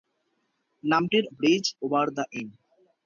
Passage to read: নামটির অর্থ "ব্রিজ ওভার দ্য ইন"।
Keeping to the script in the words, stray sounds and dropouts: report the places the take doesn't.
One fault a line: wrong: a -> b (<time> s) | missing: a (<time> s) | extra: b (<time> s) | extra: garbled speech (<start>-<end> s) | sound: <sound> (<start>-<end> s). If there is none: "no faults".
missing: অর্থ (1.2 s)